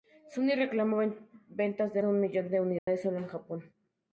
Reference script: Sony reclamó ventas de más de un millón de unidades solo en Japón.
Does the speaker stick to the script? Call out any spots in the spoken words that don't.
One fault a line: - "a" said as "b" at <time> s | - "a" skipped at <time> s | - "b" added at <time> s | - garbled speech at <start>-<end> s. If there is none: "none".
- "más" skipped at 2.0 s